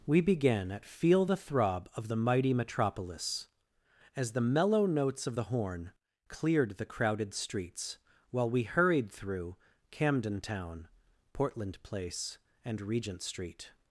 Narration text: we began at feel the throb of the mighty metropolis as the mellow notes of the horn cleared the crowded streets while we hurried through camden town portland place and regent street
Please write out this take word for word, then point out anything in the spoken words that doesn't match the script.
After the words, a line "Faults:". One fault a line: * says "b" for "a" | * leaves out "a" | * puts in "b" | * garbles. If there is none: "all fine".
we began at feel the throb of the mighty metropolis as the mellow notes of the horn cleared the crowded streets while we hurried through camden town portland place and regent street
Faults:
all fine